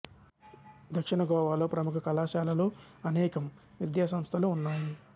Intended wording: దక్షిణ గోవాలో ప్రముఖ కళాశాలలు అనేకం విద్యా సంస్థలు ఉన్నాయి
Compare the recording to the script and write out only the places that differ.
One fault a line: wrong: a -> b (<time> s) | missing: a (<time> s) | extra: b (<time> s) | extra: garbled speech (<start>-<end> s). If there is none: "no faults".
no faults